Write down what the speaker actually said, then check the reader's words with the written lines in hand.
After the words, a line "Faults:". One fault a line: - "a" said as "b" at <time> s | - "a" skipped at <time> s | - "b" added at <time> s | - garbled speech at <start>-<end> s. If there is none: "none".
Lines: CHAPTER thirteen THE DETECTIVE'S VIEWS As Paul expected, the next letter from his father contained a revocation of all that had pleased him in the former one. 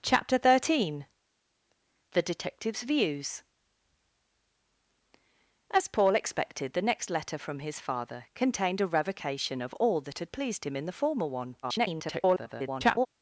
CHAPTER thirteen THE DETECTIVE'S VIEWS As Paul expected, the next letter from his father contained a revocation of all that had pleased him in the former one. [garbled]
Faults:
- garbled speech at 11.6-13.1 s